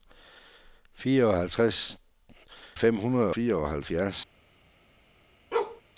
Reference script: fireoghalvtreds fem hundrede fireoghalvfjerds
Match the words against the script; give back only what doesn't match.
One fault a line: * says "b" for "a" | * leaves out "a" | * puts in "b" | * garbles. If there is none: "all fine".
all fine